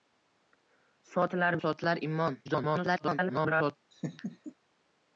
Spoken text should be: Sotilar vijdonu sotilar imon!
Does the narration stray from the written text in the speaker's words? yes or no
yes